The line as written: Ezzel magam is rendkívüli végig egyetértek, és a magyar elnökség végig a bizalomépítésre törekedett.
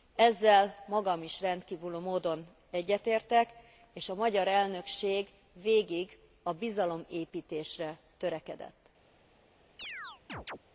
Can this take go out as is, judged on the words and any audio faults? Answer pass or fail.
fail